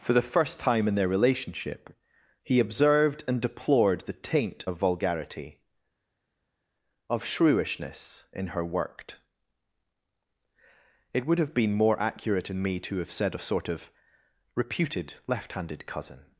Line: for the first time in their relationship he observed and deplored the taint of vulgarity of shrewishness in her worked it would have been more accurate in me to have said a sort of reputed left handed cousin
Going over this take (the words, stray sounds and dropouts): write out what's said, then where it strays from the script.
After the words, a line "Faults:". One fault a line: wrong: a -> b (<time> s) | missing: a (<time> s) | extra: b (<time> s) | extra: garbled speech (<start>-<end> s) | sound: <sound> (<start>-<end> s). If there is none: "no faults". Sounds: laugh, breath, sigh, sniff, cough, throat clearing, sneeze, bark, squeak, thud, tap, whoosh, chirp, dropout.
for the first time in their relationship he observed and deplored the taint of vulgarity of shrewishness in her worked it would have been more accurate in me to have said a sort of reputed left handed cousin
Faults:
no faults